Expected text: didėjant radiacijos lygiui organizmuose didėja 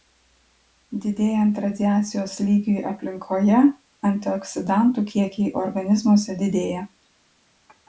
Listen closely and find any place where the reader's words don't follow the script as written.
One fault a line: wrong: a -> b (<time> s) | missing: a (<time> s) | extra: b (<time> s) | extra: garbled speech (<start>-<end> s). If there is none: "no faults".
extra: aplinkoje antioksidantų kiekiai (2.9 s)